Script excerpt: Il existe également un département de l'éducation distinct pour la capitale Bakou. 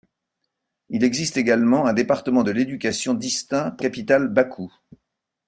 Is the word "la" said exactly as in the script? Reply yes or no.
no